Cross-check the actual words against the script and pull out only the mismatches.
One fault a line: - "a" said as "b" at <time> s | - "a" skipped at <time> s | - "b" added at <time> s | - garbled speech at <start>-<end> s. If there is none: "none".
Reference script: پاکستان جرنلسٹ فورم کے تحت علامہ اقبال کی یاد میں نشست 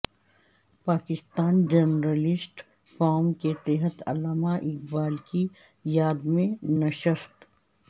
none